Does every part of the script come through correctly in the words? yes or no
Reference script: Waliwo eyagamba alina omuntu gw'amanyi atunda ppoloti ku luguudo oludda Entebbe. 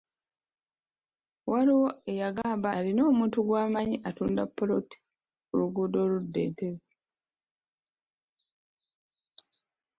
yes